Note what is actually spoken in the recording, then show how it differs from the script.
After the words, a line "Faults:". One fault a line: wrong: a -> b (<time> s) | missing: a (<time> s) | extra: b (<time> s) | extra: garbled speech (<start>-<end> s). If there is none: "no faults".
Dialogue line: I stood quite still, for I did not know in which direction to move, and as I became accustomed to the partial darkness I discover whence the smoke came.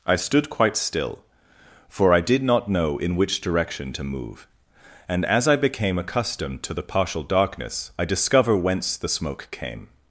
I stood quite still, for I did not know in which direction to move, and as I became accustomed to the partial darkness I discover whence the smoke came.
Faults:
no faults